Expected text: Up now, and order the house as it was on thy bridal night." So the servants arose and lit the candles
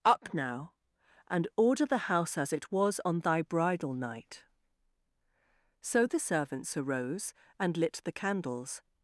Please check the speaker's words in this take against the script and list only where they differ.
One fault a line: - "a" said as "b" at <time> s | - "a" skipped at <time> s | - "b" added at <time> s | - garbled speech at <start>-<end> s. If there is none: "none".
none